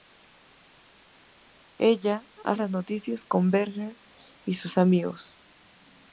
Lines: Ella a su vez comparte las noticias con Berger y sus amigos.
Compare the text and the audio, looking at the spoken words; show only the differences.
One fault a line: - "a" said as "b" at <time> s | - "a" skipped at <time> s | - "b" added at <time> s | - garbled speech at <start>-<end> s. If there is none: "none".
- "su vez comparte" skipped at 2.6 s